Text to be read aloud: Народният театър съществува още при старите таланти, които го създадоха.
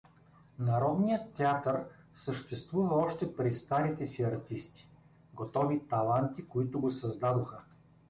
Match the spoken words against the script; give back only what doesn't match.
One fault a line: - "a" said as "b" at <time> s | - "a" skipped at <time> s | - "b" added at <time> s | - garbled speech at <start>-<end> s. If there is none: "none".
- "си артисти готови" added at 4.0 s